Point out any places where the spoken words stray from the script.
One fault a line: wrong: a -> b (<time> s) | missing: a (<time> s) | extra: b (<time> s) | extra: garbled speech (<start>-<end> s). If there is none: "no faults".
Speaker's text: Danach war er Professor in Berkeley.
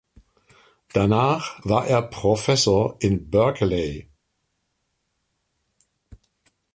no faults